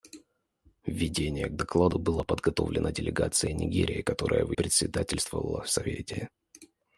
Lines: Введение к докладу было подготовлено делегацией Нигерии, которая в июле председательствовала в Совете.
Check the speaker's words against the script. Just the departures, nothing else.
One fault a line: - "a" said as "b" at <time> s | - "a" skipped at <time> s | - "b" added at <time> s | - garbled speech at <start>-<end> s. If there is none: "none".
- "июле" skipped at 4.5 s